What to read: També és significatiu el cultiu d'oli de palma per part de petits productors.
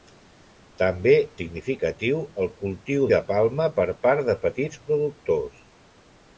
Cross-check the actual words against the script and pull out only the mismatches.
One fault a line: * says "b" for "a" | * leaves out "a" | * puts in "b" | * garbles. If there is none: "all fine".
* leaves out "és"
* leaves out "d'oli"